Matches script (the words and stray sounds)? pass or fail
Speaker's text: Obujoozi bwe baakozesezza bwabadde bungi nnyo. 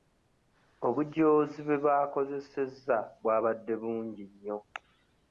pass